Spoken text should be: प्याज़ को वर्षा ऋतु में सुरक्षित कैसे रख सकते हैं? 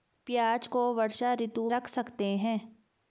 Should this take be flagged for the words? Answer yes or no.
yes